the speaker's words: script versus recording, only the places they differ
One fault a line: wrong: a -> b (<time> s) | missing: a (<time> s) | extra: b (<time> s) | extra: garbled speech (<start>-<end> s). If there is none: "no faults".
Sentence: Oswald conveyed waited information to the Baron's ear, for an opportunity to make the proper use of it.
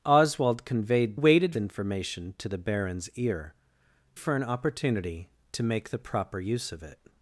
no faults